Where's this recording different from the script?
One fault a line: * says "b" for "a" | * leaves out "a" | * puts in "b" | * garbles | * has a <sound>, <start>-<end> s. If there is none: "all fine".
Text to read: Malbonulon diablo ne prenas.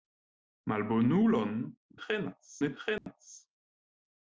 * says "prenas" for "diablo"
* has a dropout, 3.0-3.1 s